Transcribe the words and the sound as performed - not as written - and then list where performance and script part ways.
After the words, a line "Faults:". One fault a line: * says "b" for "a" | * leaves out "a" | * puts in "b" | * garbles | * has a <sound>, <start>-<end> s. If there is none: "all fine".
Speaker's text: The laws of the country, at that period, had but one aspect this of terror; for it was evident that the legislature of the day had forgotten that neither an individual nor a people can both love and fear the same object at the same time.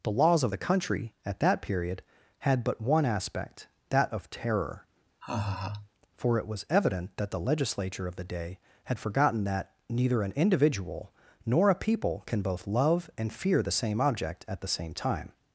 The laws of the country, at that period, had but one aspect that of terror; for it was evident that the legislature of the day had forgotten that neither an individual nor a people can both love and fear the same object at the same time.
Faults:
* says "that" for "this"
* has a laugh, 5.2-5.9 s